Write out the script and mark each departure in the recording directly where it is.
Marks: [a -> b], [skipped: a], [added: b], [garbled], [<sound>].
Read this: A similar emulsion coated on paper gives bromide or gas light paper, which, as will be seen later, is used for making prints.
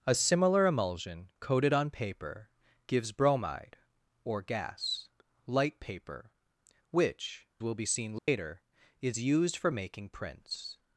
A similar emulsion coated on paper gives bromide or gas light paper, which, [skipped: as] will be seen later, [dropout] is used for making prints.